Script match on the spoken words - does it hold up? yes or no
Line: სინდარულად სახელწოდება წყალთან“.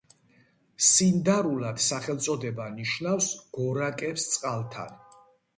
no